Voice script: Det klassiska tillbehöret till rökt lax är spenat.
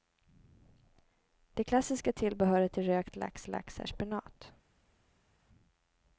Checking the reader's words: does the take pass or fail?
fail